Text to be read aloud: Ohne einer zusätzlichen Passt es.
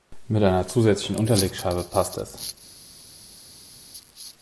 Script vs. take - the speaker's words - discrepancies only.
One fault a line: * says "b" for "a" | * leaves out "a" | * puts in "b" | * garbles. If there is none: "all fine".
* says "Mit" for "Ohne"
* puts in "Unterlegscheibe"